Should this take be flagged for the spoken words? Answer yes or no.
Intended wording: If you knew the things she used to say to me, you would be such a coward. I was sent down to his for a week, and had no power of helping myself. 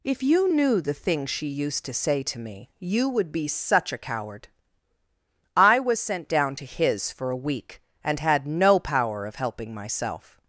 no